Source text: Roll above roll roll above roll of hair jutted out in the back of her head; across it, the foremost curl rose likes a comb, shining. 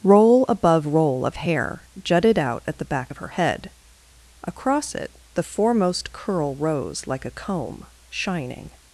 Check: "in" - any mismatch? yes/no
yes